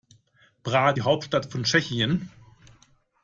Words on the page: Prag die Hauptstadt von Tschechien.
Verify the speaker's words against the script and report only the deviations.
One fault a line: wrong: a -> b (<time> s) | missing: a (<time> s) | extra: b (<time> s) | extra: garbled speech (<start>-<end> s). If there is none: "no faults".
no faults